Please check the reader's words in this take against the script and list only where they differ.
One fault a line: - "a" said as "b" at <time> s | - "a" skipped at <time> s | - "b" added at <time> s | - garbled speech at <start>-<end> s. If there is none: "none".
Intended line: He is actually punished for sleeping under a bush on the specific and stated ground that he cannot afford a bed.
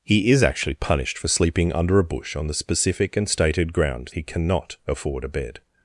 - "that" skipped at 4.1 s